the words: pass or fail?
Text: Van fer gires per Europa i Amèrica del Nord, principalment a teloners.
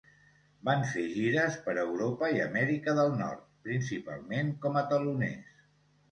fail